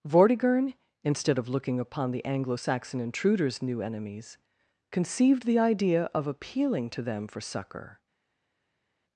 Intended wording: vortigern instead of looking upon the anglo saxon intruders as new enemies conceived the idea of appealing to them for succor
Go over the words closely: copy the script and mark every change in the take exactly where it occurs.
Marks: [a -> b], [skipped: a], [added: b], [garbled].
vortigern instead of looking upon the anglo saxon intruders [skipped: as] new enemies conceived the idea of appealing to them for succor